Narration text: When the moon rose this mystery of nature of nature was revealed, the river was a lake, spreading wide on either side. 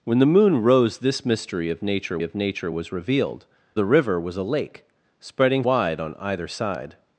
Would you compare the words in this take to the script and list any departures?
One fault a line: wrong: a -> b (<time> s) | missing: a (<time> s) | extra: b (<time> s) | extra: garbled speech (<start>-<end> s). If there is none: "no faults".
no faults